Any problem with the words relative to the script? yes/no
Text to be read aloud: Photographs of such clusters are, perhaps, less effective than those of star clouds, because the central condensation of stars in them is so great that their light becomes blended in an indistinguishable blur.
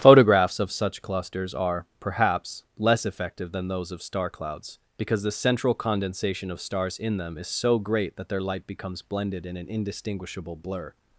no